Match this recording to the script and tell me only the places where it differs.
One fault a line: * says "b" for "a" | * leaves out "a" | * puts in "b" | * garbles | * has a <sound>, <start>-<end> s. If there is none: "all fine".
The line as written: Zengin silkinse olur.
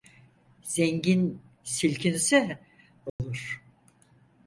* has a dropout, 3.1-3.2 s